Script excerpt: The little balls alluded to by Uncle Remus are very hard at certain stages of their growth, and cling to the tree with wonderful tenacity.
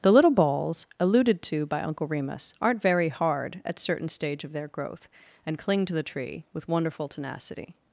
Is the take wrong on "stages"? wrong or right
wrong